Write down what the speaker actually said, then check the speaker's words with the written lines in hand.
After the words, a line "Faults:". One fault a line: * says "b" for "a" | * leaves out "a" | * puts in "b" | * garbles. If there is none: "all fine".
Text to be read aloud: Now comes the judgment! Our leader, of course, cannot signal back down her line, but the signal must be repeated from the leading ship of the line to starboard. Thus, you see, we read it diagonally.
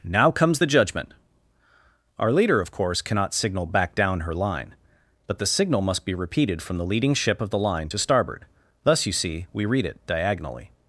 Now comes the judgment! Our leader, of course, cannot signal back down her line, but the signal must be repeated from the leading ship of the line to starboard. Thus, you see, we read it diagonally.
Faults:
all fine